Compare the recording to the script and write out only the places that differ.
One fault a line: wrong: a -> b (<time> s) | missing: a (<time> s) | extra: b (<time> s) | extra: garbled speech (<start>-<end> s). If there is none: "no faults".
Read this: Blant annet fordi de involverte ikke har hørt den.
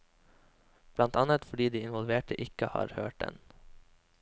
no faults